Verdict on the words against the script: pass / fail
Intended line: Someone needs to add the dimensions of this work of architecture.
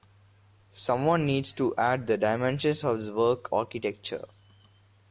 fail